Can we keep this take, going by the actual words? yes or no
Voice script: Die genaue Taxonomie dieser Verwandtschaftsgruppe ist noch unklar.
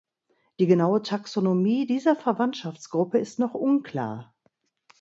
yes